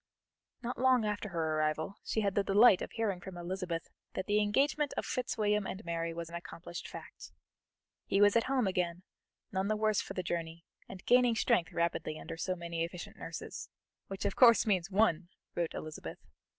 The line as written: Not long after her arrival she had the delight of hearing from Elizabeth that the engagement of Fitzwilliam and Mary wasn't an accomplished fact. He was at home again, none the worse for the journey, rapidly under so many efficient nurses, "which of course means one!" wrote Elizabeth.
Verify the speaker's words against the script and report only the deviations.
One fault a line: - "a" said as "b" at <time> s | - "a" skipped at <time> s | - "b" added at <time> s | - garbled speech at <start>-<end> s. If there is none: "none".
- "wasn't" said as "was" at 6.1 s
- "and gaining strength" added at 10.9 s